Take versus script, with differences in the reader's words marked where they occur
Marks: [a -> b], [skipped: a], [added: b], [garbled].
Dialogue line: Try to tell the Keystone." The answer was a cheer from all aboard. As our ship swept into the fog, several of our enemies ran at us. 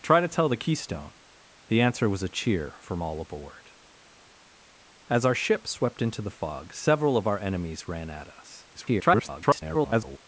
Try to tell the Keystone." The answer was a cheer from all aboard. As our ship swept into the fog, several of our enemies ran at us. [garbled]